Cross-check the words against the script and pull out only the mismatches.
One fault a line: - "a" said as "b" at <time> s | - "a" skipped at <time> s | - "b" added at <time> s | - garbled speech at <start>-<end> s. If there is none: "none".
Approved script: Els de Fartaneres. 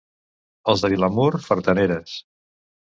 - "Vilamur" added at 0.9 s